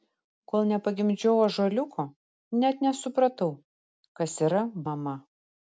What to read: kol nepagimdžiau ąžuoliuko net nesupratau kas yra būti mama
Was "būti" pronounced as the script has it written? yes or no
no